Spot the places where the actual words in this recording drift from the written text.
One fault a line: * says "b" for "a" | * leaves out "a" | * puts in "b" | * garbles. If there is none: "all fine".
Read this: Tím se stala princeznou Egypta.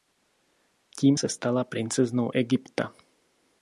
all fine